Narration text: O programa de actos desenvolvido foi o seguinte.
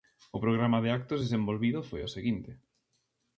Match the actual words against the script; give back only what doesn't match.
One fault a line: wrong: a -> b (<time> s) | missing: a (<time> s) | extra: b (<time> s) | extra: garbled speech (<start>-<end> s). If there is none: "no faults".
no faults